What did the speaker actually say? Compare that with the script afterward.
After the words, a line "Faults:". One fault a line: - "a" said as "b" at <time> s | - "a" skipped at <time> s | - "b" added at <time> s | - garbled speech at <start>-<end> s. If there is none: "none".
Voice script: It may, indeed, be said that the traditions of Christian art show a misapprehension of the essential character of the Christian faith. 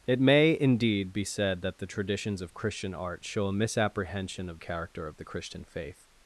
It may, indeed, be said that the traditions of Christian art show a misapprehension of character of the Christian faith.
Faults:
- "the essential" skipped at 4.6 s